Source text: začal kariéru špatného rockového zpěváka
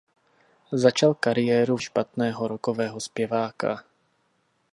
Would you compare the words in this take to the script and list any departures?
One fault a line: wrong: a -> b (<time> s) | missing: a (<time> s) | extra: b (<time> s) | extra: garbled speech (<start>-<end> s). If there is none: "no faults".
no faults